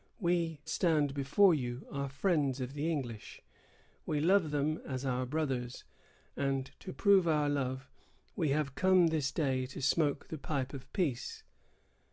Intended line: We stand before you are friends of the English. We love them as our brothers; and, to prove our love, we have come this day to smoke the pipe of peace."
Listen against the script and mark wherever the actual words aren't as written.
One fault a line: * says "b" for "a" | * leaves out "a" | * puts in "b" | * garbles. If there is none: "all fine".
all fine